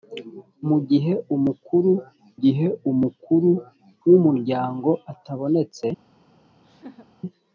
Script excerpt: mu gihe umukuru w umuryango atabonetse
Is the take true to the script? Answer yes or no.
no